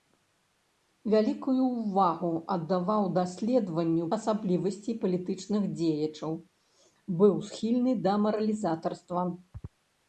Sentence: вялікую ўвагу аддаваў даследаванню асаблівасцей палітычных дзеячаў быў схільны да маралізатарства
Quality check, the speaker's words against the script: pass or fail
pass